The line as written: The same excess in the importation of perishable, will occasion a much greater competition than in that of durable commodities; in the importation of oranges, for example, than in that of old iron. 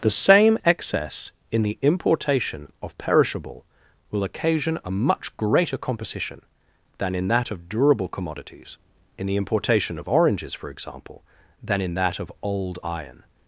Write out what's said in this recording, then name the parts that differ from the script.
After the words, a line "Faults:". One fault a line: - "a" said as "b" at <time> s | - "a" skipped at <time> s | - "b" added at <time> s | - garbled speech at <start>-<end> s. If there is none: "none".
The same excess in the importation of perishable, will occasion a much greater composition than in that of durable commodities; in the importation of oranges, for example, than in that of old iron.
Faults:
- "competition" said as "composition" at 5.8 s